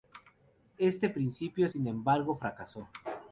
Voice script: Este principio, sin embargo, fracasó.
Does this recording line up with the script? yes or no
yes